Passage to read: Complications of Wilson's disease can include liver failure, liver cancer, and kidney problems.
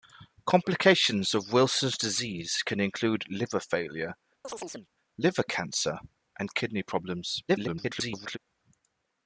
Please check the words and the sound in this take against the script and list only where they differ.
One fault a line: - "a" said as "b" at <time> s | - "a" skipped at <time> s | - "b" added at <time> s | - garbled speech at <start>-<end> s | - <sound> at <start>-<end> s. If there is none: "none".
- chirp at 4.4-4.9 s
- garbled speech at 7.5-8.4 s